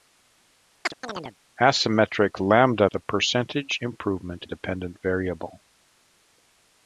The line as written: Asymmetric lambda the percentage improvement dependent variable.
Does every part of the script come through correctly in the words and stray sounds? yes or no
no